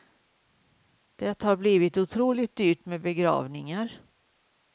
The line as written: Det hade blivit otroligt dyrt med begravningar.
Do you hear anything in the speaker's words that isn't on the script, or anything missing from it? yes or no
yes